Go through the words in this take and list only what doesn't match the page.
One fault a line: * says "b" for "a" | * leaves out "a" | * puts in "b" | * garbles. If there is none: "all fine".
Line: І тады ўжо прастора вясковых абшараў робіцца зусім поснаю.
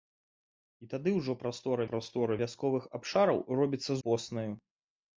* puts in "прастора"
* leaves out "зусім"